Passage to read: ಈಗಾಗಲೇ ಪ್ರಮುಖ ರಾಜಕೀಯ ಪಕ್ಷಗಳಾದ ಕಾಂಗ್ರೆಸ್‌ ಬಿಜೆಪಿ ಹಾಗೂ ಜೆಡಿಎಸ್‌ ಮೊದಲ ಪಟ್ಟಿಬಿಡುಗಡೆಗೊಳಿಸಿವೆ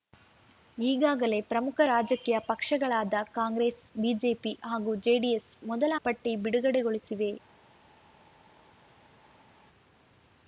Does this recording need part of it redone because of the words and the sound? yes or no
no